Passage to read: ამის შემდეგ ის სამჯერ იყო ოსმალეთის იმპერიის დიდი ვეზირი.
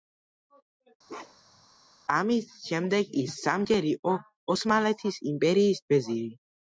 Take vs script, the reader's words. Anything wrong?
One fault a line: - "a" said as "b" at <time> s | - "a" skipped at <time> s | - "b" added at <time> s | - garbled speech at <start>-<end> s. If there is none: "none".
- "დიდი" skipped at 5.9 s